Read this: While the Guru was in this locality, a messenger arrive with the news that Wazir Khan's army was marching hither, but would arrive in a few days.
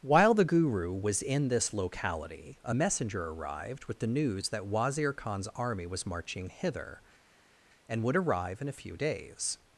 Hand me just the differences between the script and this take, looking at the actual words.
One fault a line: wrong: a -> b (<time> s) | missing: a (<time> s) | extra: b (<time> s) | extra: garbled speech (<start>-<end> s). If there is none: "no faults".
wrong: arrive -> arrived (3.3 s)
wrong: but -> and (7.9 s)